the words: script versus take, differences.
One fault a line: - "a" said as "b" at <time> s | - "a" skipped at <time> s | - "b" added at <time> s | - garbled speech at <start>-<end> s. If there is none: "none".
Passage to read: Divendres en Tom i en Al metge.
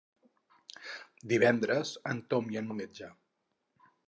none